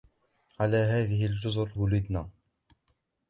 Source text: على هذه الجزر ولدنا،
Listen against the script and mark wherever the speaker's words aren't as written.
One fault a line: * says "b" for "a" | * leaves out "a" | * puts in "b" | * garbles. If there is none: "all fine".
all fine